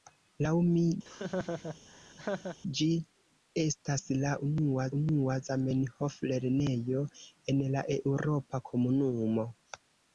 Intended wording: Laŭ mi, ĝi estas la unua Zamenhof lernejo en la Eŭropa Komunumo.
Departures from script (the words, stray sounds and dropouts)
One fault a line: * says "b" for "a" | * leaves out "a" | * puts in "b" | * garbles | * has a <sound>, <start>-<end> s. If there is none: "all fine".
* has a laugh, 1.0-2.6 s
* puts in "unua"